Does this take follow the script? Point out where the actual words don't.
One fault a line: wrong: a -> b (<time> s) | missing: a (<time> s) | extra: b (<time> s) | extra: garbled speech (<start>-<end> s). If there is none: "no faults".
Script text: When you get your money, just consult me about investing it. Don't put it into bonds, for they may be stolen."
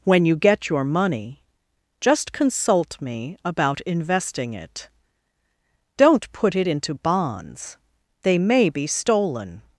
missing: for (7.8 s)